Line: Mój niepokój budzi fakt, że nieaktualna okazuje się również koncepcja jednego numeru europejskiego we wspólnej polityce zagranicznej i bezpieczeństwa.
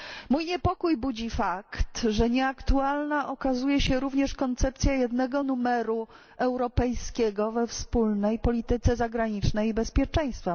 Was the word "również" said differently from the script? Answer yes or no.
no